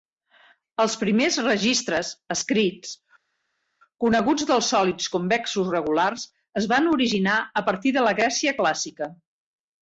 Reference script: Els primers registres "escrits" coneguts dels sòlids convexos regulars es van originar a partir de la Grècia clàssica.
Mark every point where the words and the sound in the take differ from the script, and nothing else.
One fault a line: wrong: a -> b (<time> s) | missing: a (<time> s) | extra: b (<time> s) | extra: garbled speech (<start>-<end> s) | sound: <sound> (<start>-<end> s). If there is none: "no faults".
no faults